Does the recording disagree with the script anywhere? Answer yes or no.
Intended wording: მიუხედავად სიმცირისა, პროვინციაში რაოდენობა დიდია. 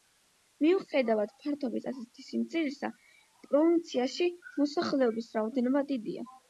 yes